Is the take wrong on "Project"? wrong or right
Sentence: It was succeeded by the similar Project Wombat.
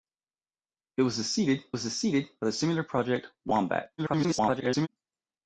right